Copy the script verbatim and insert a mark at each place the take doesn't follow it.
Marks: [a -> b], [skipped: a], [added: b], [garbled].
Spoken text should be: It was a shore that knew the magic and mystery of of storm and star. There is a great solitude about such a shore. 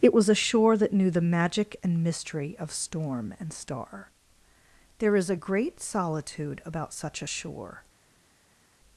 It was a shore that knew the magic and mystery of [skipped: of] storm and star. There is a great solitude about such a shore.